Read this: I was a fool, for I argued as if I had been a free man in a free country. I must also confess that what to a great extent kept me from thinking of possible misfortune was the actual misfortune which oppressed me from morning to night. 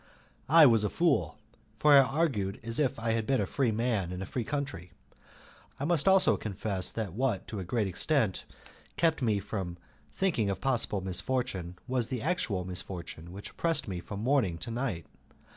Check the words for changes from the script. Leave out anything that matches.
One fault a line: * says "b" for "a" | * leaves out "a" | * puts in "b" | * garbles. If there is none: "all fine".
all fine